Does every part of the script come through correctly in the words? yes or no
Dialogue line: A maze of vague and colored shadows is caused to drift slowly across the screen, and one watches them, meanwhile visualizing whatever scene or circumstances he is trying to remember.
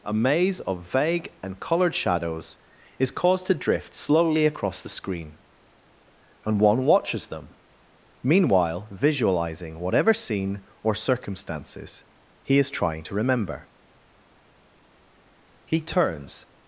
no